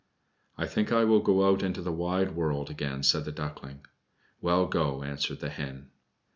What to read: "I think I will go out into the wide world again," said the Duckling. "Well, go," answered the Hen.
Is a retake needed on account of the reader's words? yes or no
no